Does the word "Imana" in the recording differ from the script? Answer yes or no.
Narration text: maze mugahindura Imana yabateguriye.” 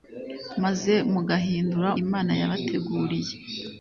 no